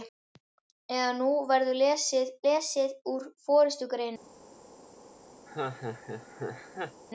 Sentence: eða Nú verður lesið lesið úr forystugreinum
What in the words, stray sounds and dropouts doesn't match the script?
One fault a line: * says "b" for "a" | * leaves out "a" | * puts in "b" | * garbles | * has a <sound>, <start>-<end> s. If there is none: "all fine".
* has a laugh, 5.5-7.0 s